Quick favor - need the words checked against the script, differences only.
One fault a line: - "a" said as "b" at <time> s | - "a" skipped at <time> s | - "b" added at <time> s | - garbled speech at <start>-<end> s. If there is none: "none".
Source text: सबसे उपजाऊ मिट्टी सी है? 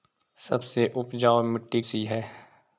none